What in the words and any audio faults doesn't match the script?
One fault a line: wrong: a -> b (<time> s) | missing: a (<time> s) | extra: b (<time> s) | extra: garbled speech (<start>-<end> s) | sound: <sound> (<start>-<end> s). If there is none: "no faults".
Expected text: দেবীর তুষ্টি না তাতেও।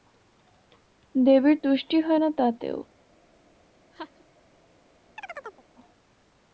extra: হয় (2.0 s)
sound: laugh (3.9-4.2 s)
sound: chirp (5.2-5.6 s)